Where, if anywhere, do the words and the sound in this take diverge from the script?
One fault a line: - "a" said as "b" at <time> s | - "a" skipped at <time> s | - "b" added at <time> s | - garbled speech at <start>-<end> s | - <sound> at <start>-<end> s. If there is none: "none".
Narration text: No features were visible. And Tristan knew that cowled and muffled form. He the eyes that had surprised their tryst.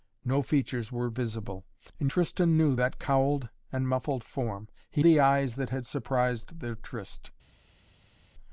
none